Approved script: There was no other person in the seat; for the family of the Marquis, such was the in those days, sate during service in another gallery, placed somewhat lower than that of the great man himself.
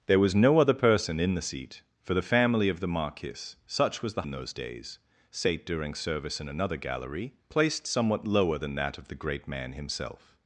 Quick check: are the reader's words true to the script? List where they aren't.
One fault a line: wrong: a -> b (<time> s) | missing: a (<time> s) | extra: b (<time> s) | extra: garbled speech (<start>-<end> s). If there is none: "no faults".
no faults